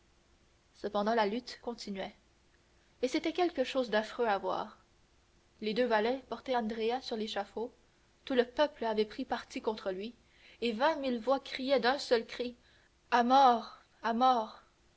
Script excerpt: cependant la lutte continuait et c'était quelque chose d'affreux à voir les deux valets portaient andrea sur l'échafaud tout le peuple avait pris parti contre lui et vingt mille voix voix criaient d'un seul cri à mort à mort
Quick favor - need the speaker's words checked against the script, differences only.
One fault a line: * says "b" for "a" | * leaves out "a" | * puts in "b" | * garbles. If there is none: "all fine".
* leaves out "voix"